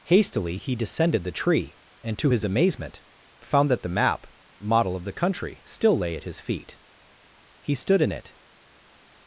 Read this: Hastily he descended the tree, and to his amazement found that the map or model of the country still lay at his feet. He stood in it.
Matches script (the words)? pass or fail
fail